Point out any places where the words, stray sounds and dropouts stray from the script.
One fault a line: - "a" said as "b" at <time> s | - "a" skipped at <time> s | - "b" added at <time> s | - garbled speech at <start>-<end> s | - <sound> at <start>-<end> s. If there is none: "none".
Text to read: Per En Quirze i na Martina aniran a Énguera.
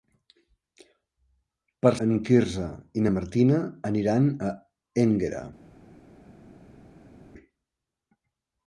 none